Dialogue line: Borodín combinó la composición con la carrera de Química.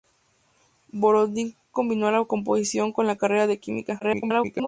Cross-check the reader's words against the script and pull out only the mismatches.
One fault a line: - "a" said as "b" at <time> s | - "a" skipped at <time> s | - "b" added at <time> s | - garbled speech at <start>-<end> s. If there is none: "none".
- garbled speech at 4.0-4.7 s